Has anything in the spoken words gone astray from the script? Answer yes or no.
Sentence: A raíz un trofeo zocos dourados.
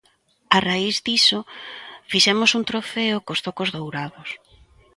yes